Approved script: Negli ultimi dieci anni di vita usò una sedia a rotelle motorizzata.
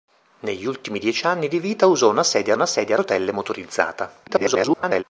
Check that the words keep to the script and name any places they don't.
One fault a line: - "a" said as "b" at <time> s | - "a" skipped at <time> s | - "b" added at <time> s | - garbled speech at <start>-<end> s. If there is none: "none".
- "una sedia" added at 2.5 s
- garbled speech at 4.3-5.0 s